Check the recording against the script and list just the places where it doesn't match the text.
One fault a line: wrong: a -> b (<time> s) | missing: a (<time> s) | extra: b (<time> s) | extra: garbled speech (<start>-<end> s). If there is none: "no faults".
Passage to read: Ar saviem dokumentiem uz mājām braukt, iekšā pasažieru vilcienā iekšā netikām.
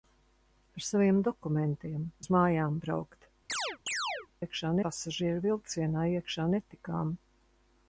no faults